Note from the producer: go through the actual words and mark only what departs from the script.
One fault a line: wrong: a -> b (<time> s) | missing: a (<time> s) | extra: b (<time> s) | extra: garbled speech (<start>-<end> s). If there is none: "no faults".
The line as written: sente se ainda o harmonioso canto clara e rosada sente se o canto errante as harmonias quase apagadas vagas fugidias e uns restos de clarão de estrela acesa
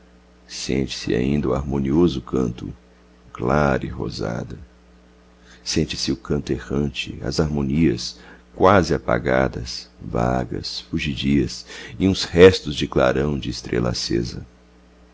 no faults